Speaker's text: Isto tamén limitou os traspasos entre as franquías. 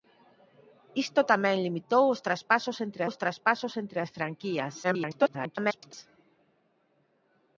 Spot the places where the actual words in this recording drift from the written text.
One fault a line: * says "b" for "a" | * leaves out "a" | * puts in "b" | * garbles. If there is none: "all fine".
* puts in "os traspasos entre"
* garbles